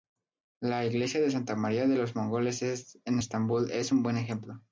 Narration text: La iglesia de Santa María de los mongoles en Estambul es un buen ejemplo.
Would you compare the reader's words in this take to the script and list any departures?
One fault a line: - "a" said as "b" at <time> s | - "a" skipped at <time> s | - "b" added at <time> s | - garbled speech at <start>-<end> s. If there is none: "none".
none